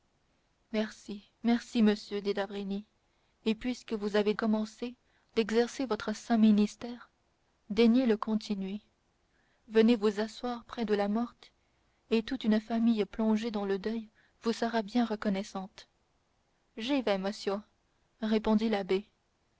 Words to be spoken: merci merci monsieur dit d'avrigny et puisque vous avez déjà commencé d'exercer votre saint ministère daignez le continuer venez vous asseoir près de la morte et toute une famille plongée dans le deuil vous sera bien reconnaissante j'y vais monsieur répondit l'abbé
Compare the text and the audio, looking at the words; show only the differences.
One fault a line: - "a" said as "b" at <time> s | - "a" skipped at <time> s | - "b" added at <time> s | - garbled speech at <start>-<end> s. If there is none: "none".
- "déjà" skipped at 4.3 s